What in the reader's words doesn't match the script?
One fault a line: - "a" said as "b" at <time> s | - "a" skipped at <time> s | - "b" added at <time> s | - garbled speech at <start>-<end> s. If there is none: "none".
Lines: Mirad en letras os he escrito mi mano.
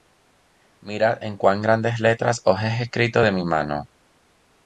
- "cuán grandes" added at 1.4 s
- "de" added at 3.2 s